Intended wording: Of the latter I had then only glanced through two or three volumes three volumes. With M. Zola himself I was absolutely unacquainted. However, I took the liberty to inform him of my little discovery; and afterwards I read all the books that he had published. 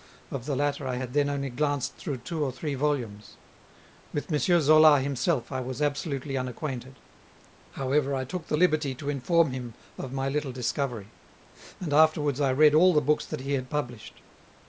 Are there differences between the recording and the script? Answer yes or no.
yes